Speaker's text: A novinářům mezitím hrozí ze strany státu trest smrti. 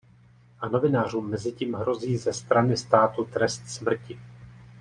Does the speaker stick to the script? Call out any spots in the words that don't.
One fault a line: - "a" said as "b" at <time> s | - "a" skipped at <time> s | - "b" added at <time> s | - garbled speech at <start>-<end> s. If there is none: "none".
none